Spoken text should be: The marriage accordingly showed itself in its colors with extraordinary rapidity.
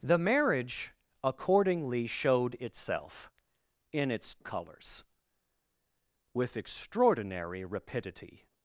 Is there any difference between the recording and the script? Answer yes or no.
no